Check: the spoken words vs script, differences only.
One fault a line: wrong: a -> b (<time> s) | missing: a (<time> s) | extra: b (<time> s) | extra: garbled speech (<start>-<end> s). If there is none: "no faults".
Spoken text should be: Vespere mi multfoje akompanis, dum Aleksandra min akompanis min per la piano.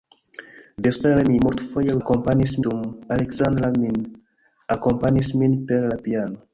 no faults